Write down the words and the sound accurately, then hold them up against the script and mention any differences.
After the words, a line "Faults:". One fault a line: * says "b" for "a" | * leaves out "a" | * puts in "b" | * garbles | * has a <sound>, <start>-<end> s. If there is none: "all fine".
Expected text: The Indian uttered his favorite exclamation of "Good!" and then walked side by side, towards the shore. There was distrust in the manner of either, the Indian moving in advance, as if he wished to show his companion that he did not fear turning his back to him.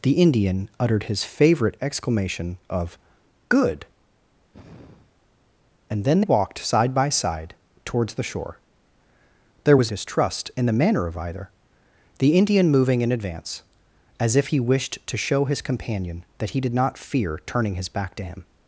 The Indian uttered his favorite exclamation of "Good!" and then walked side by side, towards the shore. There was distrust in the manner of either, the Indian moving in advance, as if he wished to show his companion that he did not fear turning his back to him.
Faults:
* has a sigh, 4.5-5.2 s